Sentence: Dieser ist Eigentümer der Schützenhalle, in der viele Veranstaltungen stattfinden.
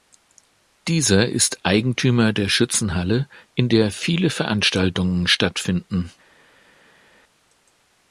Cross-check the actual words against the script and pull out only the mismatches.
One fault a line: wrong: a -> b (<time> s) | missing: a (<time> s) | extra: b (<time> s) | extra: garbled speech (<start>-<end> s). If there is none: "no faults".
no faults